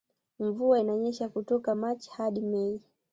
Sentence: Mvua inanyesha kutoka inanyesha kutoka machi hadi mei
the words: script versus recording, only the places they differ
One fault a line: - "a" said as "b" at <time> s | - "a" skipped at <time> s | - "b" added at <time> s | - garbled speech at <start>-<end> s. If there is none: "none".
- "inanyesha kutoka" skipped at 1.8 s